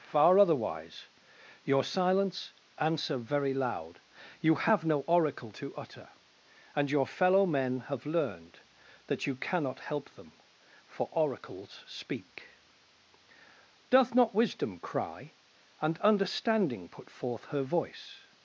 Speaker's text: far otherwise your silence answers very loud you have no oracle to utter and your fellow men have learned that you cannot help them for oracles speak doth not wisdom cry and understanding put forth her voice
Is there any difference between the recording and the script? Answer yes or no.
yes